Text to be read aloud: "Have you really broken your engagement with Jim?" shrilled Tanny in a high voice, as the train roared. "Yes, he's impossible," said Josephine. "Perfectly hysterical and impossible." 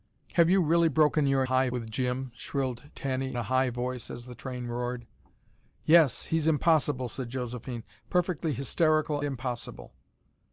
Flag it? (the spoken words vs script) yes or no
yes